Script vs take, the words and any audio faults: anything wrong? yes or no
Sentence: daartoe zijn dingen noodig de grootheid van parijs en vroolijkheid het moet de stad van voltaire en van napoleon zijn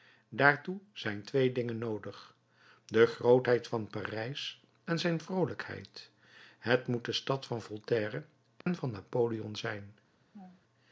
yes